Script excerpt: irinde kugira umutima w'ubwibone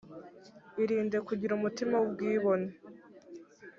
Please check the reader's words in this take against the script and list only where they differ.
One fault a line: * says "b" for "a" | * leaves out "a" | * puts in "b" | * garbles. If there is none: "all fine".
all fine